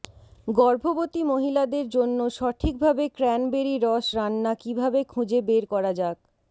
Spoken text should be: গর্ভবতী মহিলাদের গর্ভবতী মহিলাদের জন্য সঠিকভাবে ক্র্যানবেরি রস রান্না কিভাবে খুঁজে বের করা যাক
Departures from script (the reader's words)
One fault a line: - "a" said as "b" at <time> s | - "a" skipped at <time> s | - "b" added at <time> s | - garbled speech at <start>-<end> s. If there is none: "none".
- "গর্ভবতী মহিলাদের" skipped at 1.9 s